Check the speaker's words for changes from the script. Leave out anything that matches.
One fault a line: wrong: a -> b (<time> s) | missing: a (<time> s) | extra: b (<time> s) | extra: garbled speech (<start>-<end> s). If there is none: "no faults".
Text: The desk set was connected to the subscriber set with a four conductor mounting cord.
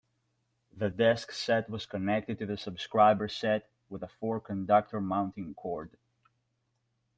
no faults